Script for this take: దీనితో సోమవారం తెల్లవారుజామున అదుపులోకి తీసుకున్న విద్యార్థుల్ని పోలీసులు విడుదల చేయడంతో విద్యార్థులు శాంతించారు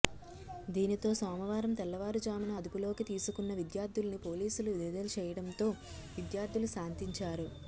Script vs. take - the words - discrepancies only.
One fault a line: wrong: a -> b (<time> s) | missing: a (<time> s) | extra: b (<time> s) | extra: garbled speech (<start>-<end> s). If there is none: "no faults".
no faults